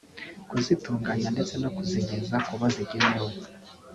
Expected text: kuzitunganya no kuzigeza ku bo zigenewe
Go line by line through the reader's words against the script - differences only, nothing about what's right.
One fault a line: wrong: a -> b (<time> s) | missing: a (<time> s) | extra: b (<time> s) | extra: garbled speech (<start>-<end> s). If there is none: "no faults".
extra: ndetse (1.4 s)